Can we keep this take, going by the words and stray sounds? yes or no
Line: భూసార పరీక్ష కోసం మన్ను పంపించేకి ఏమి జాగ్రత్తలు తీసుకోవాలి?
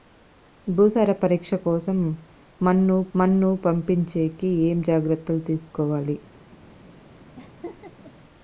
no